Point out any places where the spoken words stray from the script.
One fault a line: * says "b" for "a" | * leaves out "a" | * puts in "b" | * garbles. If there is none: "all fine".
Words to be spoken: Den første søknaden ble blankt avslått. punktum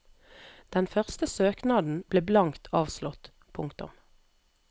all fine